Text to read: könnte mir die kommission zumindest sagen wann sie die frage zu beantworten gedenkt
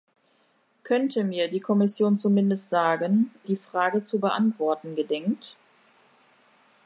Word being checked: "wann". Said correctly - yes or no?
no